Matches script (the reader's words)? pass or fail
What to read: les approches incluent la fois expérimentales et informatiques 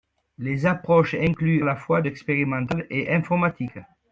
pass